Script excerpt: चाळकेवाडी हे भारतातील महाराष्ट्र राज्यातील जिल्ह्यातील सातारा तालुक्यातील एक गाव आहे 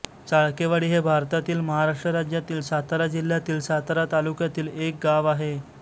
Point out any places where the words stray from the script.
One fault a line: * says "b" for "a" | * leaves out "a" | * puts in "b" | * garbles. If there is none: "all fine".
* puts in "सातारा"